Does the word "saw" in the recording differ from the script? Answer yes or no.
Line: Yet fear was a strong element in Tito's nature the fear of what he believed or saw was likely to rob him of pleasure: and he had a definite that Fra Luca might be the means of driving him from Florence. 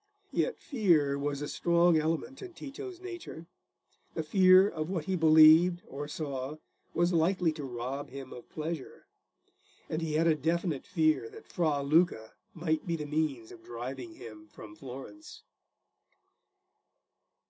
no